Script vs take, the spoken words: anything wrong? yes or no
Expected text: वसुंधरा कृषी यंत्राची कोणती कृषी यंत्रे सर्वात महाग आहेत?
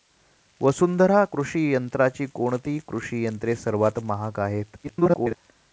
yes